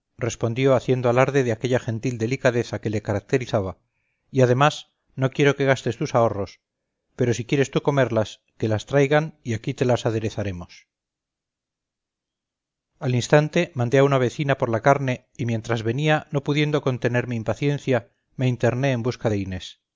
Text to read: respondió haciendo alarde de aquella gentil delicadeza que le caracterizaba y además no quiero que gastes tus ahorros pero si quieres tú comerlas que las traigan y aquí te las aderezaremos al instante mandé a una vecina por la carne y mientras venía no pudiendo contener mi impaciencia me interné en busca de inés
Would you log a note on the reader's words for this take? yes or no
no